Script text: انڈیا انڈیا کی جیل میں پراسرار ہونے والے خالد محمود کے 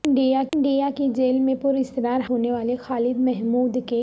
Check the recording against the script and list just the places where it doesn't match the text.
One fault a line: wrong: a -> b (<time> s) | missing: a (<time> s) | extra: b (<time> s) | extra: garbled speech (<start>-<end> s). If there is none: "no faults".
no faults